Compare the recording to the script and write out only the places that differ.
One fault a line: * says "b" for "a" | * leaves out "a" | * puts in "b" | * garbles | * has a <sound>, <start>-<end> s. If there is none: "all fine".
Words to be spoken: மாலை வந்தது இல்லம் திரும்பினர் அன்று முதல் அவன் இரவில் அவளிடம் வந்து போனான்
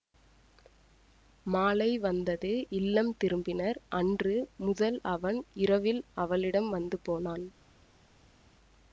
all fine